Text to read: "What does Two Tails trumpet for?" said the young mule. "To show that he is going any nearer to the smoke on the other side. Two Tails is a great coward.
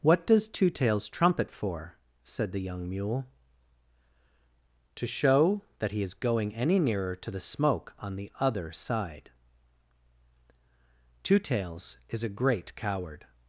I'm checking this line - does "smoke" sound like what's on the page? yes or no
yes